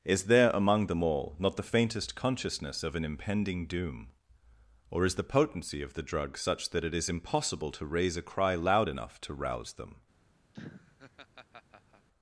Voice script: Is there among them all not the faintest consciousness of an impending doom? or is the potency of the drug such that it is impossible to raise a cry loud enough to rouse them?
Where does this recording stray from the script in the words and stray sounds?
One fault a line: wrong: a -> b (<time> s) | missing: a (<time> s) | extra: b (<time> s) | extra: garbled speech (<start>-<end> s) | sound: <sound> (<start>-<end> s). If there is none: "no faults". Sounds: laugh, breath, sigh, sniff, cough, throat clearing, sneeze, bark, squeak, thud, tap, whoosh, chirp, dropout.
sound: laugh (10.5-12.1 s)